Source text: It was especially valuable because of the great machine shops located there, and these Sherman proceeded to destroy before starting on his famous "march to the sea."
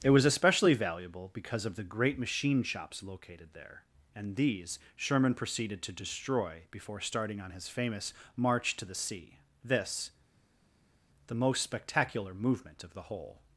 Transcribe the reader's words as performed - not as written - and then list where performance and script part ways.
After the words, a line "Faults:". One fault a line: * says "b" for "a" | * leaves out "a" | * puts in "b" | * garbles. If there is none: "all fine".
It was especially valuable because of the great machine shops located there, and these Sherman proceeded to destroy before starting on his famous "march to the sea." This, the most spectacular movement of the whole
Faults:
* puts in "This the most spectacular movement of the whole"